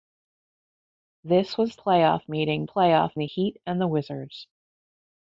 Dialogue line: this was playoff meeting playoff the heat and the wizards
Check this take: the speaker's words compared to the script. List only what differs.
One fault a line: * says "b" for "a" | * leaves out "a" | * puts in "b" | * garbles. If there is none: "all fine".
all fine